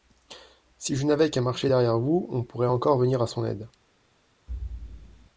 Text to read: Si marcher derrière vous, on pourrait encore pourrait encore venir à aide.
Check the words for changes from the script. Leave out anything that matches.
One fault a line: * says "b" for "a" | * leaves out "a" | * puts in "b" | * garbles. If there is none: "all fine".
* puts in "je n'avais qu'à"
* leaves out "pourrait encore"
* puts in "son"